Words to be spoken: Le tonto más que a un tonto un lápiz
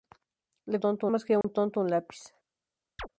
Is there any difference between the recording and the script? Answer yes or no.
no